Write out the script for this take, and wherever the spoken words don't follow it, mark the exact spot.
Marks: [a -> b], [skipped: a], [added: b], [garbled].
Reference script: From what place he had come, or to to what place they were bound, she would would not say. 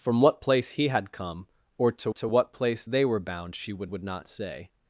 From what place he had come, or to to what place they were bound, she would would not say.